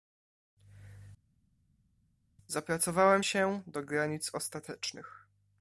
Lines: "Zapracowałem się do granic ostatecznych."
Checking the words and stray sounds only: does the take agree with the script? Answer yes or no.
yes